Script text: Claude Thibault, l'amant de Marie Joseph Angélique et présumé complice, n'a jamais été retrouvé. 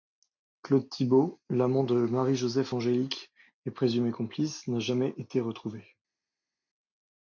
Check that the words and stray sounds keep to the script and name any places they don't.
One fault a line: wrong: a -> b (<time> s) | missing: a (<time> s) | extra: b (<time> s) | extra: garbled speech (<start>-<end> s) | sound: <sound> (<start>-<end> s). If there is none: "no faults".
no faults